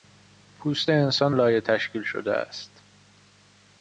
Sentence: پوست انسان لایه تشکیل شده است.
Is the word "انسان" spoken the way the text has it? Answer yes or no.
yes